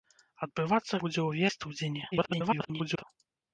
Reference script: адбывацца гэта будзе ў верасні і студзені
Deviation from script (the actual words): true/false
true